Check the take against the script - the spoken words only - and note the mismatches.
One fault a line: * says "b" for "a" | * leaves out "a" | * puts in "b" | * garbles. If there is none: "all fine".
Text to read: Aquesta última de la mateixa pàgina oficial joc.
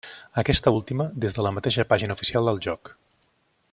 * puts in "des"
* puts in "del"